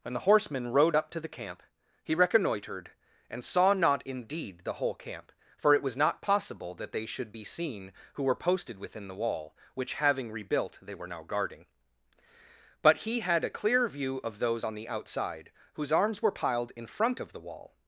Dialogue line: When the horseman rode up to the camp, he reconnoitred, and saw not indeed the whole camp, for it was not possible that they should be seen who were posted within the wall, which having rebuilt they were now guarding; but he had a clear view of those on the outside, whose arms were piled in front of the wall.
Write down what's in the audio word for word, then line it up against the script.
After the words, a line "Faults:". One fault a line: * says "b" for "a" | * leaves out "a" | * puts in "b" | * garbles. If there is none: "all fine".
When the horseman rode up to the camp, he reconnoitred, and saw not indeed the whole camp, for it was not possible that they should be seen who were posted within the wall, which having rebuilt they were now guarding; but he had a clear view of those on the outside, whose arms were piled in front of the wall.
Faults:
all fine